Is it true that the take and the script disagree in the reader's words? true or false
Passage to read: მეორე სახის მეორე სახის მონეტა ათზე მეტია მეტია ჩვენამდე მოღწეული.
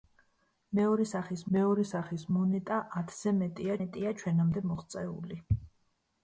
false